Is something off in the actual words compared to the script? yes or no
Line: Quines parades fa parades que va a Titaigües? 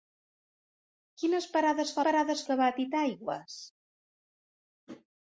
no